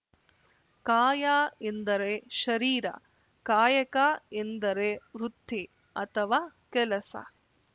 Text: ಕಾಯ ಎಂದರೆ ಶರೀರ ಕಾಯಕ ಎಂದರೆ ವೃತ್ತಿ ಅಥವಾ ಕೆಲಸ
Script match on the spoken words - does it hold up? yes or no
yes